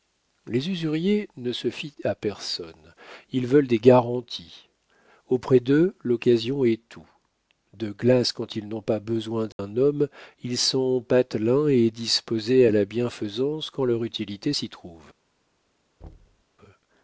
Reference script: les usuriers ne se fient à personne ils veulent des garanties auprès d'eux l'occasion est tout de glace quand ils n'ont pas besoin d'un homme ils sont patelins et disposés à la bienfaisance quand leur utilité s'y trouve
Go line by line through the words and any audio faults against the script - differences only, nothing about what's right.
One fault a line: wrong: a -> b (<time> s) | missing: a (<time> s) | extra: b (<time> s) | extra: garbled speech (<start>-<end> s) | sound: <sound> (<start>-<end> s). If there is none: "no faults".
sound: dropout (9.5-9.6 s)
sound: thud (16.0-16.4 s)